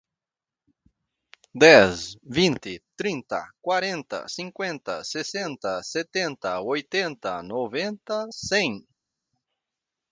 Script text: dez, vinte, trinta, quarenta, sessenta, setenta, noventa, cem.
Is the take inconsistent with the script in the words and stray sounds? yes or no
yes